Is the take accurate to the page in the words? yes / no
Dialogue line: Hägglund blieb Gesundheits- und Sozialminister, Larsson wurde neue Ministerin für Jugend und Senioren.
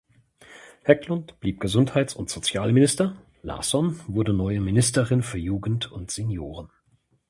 yes